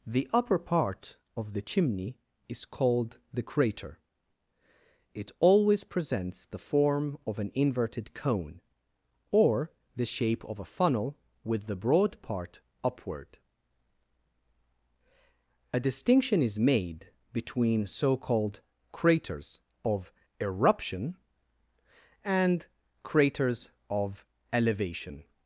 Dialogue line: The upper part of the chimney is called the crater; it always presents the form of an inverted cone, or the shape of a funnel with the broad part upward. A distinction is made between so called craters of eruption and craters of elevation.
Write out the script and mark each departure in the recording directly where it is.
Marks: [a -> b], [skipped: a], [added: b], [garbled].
The upper part of the chimney is called the crater; it always presents the form of an inverted cone, or the shape of a funnel with the broad part upward. A distinction is made between so called craters of eruption and craters of elevation.